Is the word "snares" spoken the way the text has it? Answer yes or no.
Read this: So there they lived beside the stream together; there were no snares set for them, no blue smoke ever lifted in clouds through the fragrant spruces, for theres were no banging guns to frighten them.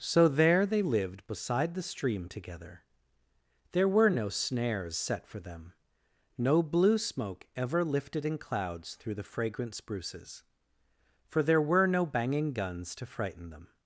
yes